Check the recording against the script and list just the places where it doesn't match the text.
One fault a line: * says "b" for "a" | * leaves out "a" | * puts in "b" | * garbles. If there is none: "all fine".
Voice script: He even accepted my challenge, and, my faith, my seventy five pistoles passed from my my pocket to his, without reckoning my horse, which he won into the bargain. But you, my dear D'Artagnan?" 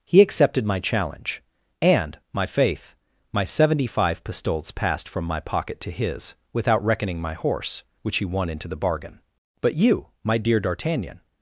* leaves out "even"
* leaves out "my"